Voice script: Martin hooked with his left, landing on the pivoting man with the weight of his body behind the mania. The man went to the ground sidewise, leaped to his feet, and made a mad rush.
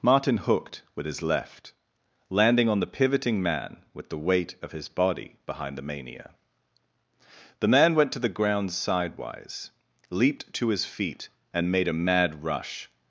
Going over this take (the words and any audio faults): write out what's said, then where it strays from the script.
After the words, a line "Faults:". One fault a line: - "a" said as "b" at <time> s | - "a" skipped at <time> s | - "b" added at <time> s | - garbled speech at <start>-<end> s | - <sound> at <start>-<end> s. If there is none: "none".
Martin hooked with his left, landing on the pivoting man with the weight of his body behind the mania. The man went to the ground sidewise, leaped to his feet, and made a mad rush.
Faults:
none